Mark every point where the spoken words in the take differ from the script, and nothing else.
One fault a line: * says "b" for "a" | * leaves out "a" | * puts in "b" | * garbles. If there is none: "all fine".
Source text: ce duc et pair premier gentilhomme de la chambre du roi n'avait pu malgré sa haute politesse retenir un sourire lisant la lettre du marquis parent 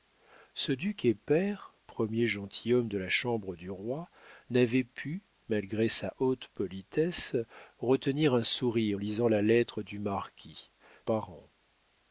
all fine